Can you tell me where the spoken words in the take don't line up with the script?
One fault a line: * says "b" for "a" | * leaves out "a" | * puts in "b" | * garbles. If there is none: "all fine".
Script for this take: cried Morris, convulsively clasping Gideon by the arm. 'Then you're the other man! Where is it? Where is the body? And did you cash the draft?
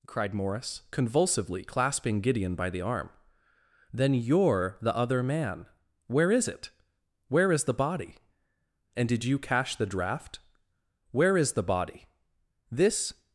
* puts in "Where is the body This"